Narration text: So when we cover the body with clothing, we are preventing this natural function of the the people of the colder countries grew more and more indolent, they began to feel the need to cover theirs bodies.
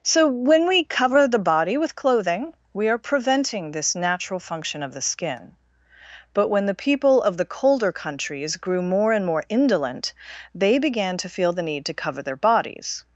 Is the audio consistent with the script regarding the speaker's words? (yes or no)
no